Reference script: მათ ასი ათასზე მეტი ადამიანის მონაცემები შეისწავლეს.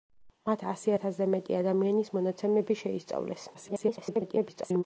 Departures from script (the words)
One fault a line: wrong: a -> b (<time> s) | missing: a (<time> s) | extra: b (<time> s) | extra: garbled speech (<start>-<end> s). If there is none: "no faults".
extra: garbled speech (3.5-4.8 s)